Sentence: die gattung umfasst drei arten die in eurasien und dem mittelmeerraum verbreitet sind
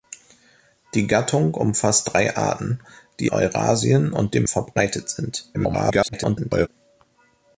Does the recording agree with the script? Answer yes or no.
no